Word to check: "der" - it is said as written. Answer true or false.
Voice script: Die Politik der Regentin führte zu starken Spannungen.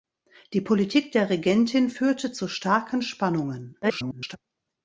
true